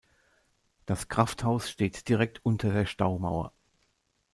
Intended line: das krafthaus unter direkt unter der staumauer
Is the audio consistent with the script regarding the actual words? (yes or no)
no